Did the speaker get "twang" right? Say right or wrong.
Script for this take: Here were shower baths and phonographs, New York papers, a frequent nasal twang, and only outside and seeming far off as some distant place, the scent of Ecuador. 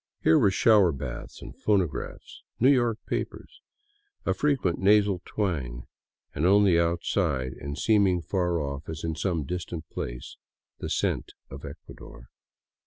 right